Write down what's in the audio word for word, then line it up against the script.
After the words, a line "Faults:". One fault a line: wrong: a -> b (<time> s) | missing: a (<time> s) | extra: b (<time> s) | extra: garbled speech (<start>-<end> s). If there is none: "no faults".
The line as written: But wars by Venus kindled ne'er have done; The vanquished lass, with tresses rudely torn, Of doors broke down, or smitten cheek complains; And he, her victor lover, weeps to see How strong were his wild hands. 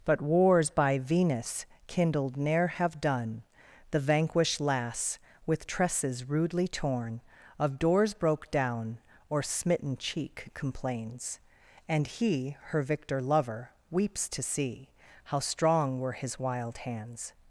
But wars by Venus kindled ne'er have done; The vanquished lass, with tresses rudely torn, Of doors broke down, or smitten cheek complains; And he, her victor lover, weeps to see How strong were his wild hands.
Faults:
no faults